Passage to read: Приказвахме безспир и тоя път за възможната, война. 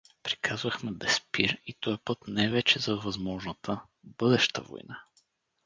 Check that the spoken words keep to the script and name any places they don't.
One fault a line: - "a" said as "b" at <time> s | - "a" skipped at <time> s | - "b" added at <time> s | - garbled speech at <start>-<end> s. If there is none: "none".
- "не вече" added at 2.3 s
- "бъдеща" added at 4.0 s